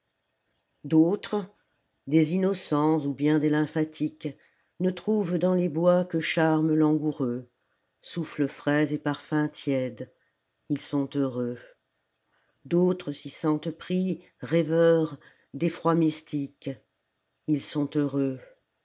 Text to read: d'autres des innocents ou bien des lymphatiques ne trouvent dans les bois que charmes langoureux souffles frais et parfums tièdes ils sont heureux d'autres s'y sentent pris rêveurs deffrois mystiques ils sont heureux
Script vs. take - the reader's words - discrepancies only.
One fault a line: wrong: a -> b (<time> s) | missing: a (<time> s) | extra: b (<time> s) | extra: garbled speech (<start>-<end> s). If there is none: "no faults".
no faults